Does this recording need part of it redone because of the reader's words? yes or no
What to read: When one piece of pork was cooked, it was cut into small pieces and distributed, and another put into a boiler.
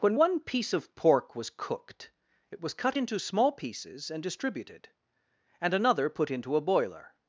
no